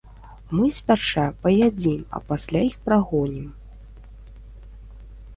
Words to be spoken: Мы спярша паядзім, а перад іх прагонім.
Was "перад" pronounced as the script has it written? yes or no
no